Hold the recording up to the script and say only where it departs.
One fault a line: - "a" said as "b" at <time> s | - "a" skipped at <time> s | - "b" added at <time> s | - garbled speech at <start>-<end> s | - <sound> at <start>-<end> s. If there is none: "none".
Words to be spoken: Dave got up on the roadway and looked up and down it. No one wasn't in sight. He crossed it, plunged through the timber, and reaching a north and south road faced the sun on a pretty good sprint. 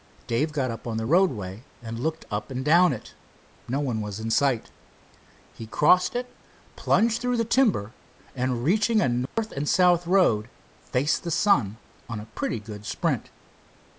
- "wasn't" said as "was" at 4.0 s
- dropout at 9.3-9.4 s